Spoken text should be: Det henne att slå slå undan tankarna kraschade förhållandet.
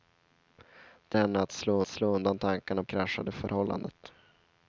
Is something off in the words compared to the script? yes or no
no